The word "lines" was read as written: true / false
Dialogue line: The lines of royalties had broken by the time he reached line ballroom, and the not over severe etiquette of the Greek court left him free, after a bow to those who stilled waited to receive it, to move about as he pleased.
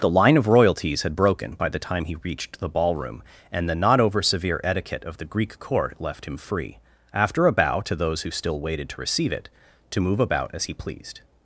false